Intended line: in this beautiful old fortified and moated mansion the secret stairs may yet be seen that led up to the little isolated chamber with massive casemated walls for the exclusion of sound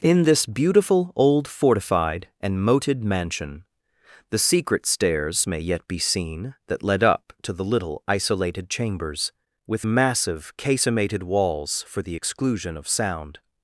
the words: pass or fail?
fail